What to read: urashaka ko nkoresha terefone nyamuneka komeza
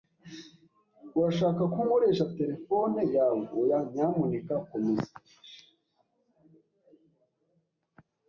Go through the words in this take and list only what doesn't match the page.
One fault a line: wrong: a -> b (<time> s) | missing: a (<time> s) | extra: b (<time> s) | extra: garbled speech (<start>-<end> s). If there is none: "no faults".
extra: yawe oya (3.1 s)